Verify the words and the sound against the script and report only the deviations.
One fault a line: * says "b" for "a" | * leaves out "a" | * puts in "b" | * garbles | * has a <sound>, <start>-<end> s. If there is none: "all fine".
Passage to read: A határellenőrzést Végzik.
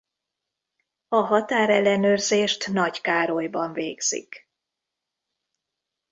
* puts in "Nagykárolyban"